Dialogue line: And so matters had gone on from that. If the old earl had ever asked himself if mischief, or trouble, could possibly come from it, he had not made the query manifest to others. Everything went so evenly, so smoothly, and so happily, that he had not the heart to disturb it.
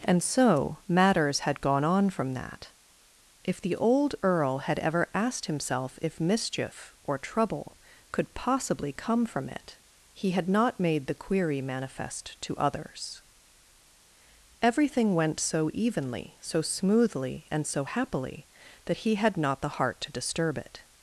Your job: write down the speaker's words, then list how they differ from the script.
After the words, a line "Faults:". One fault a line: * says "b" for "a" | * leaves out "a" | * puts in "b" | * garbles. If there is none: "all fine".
And so matters had gone on from that. If the old earl had ever asked himself if mischief, or trouble, could possibly come from it, he had not made the query manifest to others. Everything went so evenly, so smoothly, and so happily, that he had not the heart to disturb it.
Faults:
all fine